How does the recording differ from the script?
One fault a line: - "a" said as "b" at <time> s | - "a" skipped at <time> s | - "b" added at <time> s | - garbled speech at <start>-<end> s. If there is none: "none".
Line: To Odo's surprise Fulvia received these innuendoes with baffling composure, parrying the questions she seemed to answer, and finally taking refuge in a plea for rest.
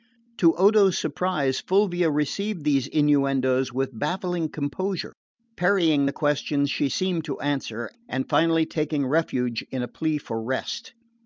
none